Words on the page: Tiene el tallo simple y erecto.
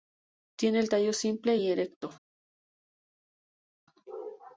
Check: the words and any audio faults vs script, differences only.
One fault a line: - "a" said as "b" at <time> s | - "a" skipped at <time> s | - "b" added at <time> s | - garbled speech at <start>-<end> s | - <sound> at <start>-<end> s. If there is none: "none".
none